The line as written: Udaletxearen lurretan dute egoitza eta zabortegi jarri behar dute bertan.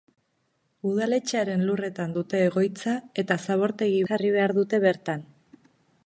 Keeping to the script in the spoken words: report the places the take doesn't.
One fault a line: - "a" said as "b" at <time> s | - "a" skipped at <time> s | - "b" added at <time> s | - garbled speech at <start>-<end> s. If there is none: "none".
none